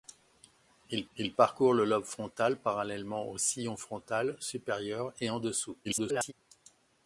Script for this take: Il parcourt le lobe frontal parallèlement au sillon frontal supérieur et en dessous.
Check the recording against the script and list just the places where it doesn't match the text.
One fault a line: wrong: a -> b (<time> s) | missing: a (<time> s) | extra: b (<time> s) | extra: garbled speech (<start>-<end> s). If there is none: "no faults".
extra: il (1.2 s)
extra: garbled speech (5.8-6.3 s)